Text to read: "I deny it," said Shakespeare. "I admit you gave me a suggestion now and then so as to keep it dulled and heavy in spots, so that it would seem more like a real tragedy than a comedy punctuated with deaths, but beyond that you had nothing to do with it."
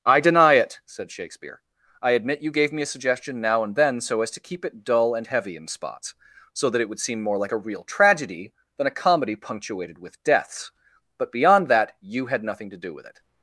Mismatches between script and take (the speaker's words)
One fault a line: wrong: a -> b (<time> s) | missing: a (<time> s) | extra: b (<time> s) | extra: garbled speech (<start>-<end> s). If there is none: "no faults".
wrong: dulled -> dull (4.8 s)